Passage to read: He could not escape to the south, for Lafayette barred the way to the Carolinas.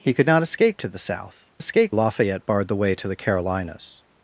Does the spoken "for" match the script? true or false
false